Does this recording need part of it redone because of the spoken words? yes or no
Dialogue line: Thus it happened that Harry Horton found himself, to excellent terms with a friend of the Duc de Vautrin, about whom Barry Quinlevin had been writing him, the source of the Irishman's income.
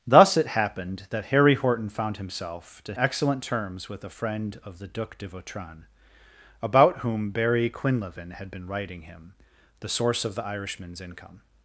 no